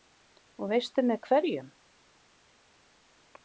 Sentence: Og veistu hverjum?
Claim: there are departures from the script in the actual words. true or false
true